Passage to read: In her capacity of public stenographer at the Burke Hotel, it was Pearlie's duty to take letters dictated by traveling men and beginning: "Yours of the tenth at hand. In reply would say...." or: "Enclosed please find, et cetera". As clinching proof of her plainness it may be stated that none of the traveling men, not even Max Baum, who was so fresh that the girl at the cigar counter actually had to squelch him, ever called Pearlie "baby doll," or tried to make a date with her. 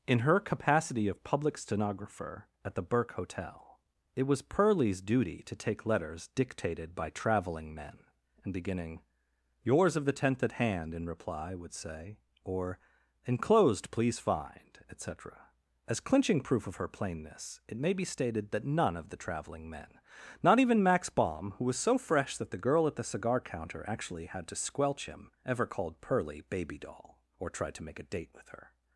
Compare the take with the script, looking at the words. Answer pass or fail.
pass